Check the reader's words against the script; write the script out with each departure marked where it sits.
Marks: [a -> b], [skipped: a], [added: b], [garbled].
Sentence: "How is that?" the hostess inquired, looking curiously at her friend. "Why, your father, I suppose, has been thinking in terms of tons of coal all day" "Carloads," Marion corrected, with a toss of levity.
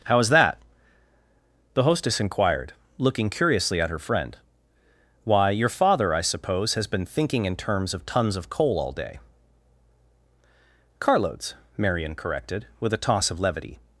"How is that?" the hostess inquired, looking curiously at her friend. "Why, your father, I suppose, has been thinking in terms of tons of coal all day" "Carloads," Marion corrected, with a toss of levity.